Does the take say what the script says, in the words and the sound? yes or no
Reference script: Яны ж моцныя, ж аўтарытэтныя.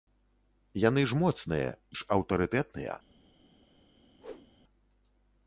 no